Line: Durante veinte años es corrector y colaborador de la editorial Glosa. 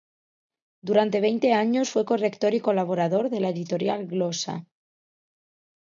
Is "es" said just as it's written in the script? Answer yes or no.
no